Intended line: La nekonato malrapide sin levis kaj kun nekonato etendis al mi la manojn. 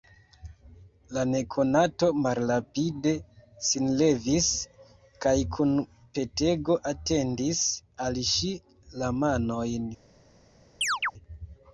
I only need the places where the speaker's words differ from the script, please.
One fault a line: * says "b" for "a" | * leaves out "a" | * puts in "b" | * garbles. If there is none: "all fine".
* says "petego" for "nekonato"
* says "ŝi" for "mi"